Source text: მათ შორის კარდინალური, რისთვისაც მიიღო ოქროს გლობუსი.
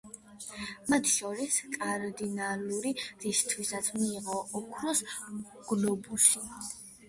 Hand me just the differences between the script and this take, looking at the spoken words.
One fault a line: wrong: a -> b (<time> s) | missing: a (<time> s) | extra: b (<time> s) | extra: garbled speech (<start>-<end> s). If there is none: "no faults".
no faults